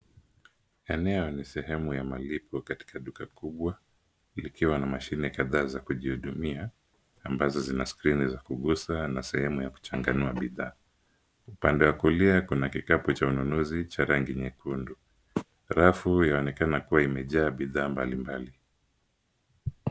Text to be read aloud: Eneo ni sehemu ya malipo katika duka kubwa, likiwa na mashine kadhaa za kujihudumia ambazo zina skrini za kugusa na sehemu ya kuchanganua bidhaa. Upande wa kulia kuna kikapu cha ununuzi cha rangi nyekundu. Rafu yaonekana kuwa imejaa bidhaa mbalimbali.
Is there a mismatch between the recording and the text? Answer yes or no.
no